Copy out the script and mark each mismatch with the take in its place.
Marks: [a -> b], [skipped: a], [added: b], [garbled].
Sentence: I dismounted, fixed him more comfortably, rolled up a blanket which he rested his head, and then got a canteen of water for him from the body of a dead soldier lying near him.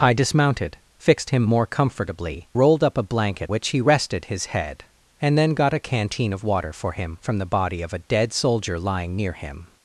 I dismounted, fixed him more comfortably, rolled up a blanket which he rested his head, and then got a canteen of water for him from the body of a dead soldier lying near him.